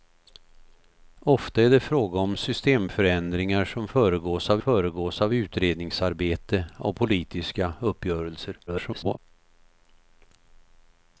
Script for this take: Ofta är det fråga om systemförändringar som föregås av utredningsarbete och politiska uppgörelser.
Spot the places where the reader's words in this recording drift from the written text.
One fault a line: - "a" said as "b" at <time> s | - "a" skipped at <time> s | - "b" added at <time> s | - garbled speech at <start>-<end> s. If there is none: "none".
- "föregås av" added at 4.6 s
- garbled speech at 8.7-9.2 s